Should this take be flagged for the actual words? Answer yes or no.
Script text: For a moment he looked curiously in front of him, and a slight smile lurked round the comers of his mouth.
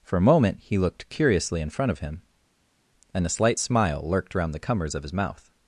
no